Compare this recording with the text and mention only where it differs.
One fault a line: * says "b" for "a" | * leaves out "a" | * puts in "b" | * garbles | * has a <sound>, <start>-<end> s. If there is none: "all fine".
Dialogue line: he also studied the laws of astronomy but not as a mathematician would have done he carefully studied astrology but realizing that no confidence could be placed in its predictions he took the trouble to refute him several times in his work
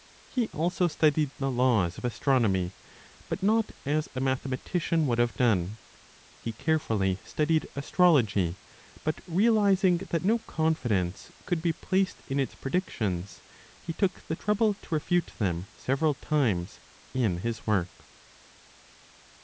* says "them" for "him"